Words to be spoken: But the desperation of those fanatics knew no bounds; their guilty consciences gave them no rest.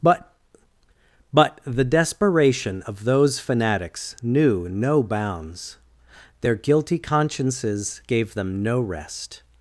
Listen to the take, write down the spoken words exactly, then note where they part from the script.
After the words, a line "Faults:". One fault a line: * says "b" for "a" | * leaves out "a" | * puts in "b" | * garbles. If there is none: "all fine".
But but the desperation of those fanatics knew no bounds; their guilty consciences gave them no rest.
Faults:
* puts in "but"